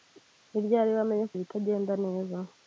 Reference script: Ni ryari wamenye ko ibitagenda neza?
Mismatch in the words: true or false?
false